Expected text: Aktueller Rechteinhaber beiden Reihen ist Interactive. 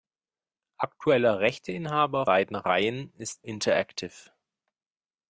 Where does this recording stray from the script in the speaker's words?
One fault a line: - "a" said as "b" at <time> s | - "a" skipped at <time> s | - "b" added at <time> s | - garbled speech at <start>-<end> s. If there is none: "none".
none